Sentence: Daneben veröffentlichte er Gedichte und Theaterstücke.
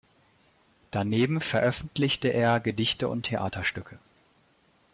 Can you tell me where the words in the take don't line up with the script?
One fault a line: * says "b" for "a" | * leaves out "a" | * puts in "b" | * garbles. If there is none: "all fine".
all fine